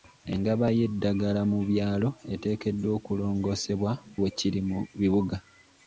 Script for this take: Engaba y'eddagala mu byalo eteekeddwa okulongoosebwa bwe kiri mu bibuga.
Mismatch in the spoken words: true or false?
false